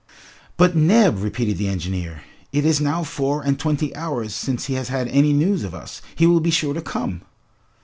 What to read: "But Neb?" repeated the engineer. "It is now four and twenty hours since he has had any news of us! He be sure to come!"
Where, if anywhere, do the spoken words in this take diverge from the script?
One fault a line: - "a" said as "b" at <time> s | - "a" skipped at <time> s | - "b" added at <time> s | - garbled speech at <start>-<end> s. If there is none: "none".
- "will" added at 6.2 s